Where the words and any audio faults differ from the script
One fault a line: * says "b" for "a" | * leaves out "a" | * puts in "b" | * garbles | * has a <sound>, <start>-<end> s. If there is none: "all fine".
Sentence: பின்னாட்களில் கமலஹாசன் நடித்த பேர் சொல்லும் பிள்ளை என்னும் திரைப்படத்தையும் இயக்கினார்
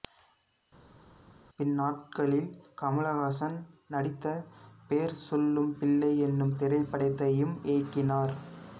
all fine